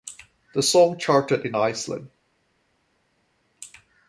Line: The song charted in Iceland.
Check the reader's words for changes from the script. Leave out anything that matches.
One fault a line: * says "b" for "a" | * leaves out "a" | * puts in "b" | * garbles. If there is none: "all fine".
all fine